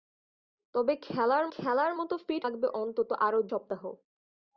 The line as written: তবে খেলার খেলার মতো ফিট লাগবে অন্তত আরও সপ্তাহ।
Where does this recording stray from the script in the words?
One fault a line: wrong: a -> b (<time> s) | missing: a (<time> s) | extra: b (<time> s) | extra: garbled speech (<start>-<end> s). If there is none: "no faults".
no faults